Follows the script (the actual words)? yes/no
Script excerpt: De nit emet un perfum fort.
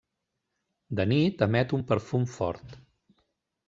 yes